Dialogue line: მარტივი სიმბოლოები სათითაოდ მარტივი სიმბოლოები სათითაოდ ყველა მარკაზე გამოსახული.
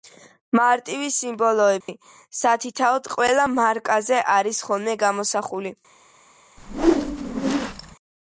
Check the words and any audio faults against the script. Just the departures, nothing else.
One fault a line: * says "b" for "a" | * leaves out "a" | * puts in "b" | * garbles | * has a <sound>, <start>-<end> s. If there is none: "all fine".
* has a dropout, 1.8-1.9 s
* says "ყველა მარკაზე არის ხოლმე" for "მარტივი სიმბოლოები სათითაოდ ყველა მარკაზე"
* has a whoosh, 6.6-8.0 s